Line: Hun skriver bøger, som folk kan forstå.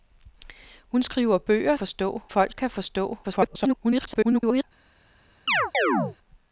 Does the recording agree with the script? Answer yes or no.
no